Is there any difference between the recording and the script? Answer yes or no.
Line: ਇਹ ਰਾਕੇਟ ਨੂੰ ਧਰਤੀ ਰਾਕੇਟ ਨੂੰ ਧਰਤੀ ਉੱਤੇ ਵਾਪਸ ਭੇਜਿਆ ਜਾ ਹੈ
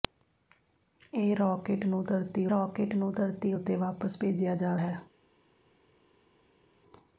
no